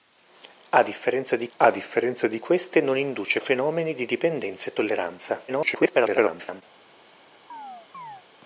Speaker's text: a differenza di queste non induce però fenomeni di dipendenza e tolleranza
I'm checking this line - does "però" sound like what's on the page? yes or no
no